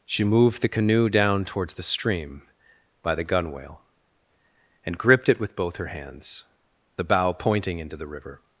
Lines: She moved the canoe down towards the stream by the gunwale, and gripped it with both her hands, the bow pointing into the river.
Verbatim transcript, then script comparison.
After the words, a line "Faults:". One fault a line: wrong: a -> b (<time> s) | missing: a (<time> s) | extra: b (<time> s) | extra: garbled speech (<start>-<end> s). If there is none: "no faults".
She moved the canoe down towards the stream by the gunwale, and gripped it with both her hands, the bow pointing into the river.
Faults:
no faults